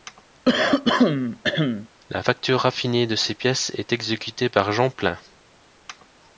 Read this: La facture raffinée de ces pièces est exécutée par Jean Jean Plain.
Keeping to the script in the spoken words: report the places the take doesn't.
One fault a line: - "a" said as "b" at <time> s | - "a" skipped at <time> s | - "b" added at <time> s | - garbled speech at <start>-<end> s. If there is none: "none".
- "Jean" skipped at 4.9 s